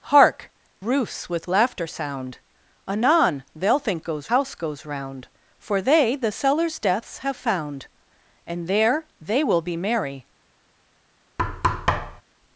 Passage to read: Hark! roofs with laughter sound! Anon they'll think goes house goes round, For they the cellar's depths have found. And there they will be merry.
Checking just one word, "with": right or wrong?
right